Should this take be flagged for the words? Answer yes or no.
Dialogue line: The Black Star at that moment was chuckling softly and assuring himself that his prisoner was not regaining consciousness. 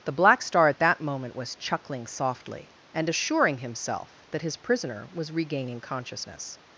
yes